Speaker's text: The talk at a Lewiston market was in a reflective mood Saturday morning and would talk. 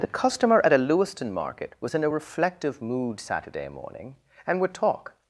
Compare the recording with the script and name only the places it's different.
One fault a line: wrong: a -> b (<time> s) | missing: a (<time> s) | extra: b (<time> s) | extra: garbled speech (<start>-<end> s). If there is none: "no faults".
wrong: talk -> customer (0.1 s)